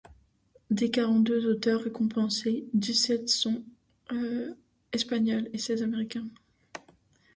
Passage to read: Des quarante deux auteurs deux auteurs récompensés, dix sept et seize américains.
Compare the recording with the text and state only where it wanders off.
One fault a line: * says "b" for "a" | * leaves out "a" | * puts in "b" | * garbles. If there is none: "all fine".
* leaves out "deux auteurs"
* puts in "sont espagnols"